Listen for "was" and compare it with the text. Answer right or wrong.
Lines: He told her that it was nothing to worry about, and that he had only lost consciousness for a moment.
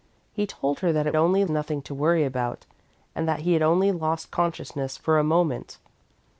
wrong